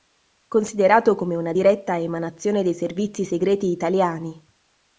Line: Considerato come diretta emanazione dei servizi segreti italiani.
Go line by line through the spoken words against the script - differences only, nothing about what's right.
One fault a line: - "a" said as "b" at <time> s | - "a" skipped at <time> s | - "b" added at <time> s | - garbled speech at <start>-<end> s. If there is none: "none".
- "una" added at 1.4 s